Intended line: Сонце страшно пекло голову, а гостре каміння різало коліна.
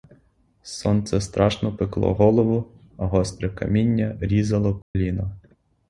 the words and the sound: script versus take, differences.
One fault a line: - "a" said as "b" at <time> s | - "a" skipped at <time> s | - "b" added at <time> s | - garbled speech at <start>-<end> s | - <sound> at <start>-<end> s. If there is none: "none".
- dropout at 4.8-5.0 s